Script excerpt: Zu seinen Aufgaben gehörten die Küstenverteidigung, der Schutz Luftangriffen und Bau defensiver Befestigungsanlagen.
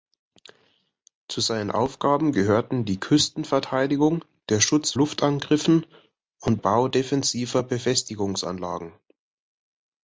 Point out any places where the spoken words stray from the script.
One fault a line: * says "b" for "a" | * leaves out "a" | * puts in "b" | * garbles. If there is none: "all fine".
all fine